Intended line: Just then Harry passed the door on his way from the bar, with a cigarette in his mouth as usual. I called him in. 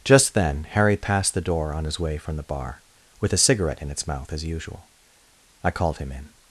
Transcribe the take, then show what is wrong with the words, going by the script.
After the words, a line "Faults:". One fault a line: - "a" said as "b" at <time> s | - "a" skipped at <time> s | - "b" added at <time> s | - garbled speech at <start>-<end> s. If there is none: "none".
Just then Harry passed the door on his way from the bar, with a cigarette in its mouth as usual. I called him in.
Faults:
- "his" said as "its" at 3.9 s